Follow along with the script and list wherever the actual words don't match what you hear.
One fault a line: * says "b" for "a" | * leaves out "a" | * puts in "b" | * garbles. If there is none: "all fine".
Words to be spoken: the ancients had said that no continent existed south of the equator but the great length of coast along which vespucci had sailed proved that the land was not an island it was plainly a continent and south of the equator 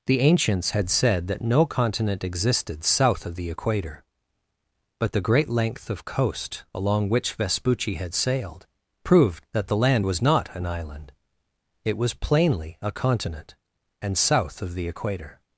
all fine